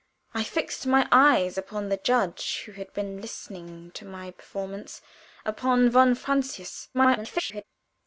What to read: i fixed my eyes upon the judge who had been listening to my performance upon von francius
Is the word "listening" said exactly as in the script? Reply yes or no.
yes